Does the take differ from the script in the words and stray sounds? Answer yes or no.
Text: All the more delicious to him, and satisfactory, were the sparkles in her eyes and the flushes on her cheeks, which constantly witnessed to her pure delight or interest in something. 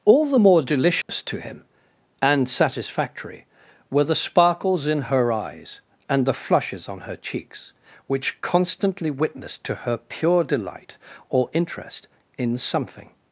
yes